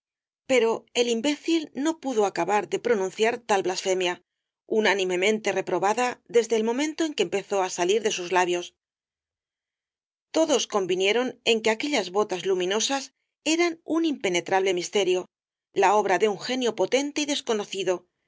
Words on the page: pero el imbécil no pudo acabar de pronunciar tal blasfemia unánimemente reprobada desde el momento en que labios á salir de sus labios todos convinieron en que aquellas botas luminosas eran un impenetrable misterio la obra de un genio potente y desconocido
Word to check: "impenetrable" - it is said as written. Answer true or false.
true